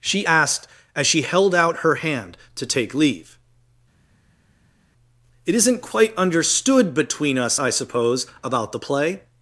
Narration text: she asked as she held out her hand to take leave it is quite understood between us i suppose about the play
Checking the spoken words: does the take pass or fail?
fail